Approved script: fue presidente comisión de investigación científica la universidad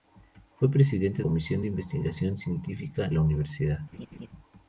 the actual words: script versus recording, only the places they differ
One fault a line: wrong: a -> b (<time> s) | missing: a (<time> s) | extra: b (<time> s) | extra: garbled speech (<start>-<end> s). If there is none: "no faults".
no faults